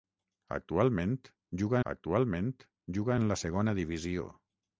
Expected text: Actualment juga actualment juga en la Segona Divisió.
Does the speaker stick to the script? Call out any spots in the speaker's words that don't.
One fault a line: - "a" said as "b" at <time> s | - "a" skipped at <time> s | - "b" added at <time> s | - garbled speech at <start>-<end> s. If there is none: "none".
none